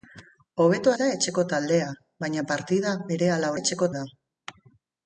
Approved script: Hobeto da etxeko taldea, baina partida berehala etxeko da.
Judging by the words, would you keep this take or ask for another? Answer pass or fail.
pass